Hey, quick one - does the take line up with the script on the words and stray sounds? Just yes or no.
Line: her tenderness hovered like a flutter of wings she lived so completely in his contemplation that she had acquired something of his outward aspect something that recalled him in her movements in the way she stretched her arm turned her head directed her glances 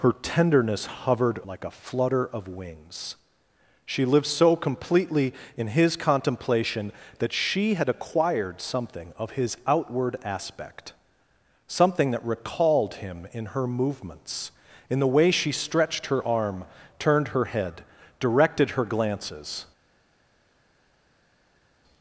yes